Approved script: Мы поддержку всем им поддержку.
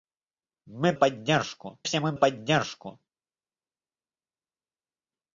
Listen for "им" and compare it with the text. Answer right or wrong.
right